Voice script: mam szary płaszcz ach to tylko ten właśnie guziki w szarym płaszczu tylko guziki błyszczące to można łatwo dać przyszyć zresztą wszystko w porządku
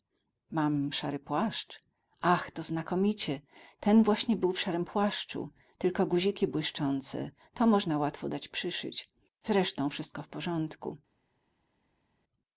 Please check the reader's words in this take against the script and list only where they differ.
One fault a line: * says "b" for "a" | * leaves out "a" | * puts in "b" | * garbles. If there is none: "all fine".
* says "znakomicie" for "tylko"
* says "był" for "guziki"